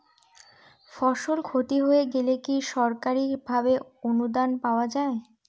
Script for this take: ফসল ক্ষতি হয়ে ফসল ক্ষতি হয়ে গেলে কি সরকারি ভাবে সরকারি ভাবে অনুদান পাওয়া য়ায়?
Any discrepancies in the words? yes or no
yes